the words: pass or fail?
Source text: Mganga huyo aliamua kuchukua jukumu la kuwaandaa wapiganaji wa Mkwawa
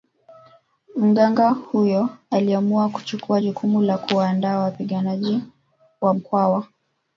pass